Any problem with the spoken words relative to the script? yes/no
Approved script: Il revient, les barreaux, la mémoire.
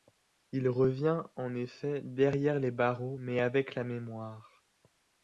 yes